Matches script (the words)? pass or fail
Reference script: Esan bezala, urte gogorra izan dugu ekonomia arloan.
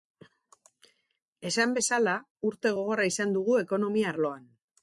pass